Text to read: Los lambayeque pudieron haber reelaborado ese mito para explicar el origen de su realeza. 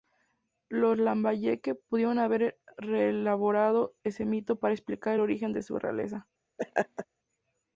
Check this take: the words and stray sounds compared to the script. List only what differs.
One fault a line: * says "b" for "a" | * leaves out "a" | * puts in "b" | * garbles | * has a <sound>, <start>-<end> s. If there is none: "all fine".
* has a laugh, 6.6-7.1 s